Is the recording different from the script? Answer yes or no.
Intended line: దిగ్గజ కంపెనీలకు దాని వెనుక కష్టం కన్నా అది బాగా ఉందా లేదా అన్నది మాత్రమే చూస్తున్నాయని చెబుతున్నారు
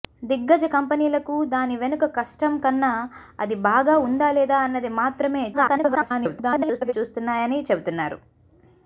yes